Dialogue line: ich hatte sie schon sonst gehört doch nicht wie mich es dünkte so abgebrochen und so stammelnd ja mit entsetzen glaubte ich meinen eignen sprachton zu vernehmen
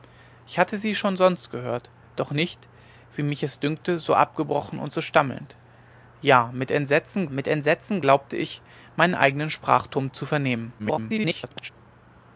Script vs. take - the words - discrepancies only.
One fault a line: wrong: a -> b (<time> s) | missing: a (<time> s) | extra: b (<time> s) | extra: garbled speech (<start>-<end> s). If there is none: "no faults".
extra: mit entsetzen (7.3 s)
extra: garbled speech (10.8-11.7 s)